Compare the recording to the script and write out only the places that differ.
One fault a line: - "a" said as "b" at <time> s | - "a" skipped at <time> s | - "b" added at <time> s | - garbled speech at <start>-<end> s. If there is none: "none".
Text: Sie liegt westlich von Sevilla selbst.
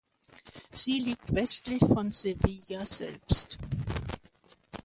none